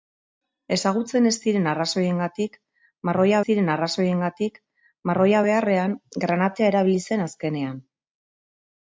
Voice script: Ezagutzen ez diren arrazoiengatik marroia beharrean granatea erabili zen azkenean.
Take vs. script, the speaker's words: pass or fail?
fail